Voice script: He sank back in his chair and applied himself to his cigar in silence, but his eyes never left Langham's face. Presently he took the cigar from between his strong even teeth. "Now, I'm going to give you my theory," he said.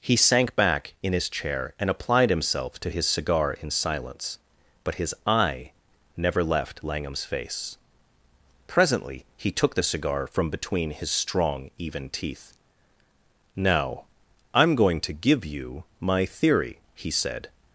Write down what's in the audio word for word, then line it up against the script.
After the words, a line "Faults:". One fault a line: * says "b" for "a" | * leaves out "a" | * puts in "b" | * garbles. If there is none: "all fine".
He sank back in his chair and applied himself to his cigar in silence, but his eye never left Langham's face. Presently he took the cigar from between his strong even teeth. "Now, I'm going to give you my theory," he said.
Faults:
* says "eye" for "eyes"